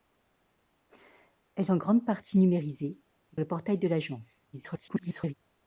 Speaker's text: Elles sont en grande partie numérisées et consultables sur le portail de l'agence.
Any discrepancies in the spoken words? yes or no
yes